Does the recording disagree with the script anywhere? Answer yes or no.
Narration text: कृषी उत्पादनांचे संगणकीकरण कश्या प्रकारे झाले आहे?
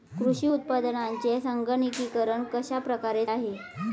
yes